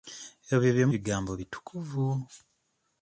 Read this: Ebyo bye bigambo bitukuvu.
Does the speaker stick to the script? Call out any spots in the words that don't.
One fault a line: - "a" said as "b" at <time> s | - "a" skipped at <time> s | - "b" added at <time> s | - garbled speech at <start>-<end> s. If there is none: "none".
none